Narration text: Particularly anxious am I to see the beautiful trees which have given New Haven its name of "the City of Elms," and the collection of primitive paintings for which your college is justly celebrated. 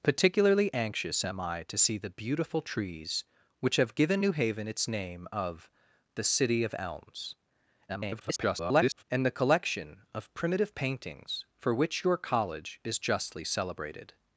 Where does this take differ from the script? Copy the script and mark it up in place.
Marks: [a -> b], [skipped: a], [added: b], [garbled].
Particularly anxious am I to see the beautiful trees which have given New Haven its name of "the City of Elms," [garbled] and the collection of primitive paintings for which your college is justly celebrated.